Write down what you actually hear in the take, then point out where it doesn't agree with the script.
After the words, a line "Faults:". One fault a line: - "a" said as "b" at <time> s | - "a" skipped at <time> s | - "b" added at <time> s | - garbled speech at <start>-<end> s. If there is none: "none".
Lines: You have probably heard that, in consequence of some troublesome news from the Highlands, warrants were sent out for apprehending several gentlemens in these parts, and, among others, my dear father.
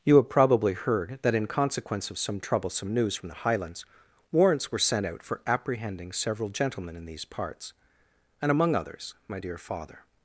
You have probably heard that, in consequence of some troublesome news from the Highlands, warrants were sent out for apprehending several gentlemen in these parts, and, among others, my dear father.
Faults:
- "gentlemens" said as "gentlemen" at 6.5 s